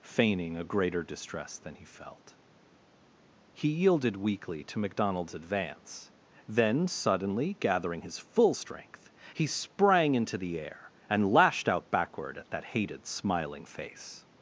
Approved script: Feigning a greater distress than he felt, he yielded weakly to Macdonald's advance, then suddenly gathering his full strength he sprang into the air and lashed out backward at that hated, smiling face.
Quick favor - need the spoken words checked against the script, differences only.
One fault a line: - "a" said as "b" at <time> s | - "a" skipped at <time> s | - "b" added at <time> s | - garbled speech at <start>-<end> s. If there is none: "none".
none